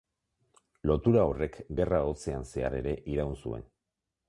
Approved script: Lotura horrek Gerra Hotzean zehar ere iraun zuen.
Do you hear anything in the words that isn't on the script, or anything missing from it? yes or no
no